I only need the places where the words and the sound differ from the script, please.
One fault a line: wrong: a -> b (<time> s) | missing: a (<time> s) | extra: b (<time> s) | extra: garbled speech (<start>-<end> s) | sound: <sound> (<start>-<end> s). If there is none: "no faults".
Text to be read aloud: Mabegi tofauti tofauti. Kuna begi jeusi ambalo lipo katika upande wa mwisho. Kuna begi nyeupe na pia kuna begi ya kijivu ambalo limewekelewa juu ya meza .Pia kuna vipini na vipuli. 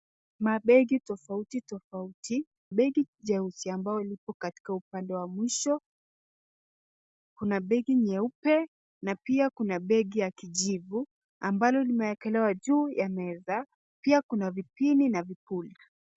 missing: Kuna (2.5 s)